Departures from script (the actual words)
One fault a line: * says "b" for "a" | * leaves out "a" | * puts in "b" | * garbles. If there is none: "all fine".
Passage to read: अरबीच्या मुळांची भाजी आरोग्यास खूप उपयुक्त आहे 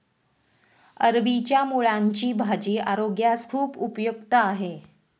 all fine